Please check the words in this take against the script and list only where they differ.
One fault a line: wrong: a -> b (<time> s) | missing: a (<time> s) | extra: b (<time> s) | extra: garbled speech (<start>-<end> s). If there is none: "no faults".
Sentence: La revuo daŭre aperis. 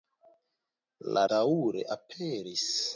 missing: revuo (1.2 s)